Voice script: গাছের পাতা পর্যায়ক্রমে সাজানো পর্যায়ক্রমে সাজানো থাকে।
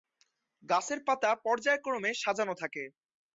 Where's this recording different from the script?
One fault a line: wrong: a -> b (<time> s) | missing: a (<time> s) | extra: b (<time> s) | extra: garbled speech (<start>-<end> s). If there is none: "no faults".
missing: পর্যায়ক্রমে সাজানো (2.5 s)